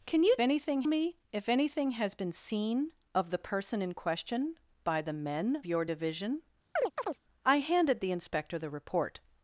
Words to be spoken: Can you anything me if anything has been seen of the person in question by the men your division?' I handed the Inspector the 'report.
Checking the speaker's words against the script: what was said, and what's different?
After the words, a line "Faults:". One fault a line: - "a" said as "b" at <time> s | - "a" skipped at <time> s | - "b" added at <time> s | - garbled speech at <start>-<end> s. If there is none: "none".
Can you anything me if anything has been seen of the person in question by the men your division?' I handed the Inspector the 'report.
Faults:
none